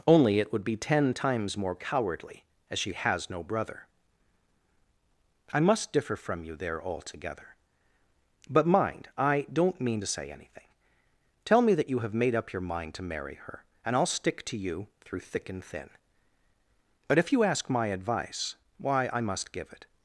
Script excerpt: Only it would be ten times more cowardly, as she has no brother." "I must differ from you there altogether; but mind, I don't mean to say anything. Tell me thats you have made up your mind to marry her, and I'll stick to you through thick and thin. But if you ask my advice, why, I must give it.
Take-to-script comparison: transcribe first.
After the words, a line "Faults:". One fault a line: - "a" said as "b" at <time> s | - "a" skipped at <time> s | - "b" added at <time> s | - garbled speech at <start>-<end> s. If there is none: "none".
Only it would be ten times more cowardly, as she has no brother." "I must differ from you there altogether; but mind, I don't mean to say anything. Tell me that you have made up your mind to marry her, and I'll stick to you through thick and thin. But if you ask my advice, why, I must give it.
Faults:
- "thats" said as "that" at 11.8 s